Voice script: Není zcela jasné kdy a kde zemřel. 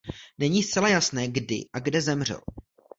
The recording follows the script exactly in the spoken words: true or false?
true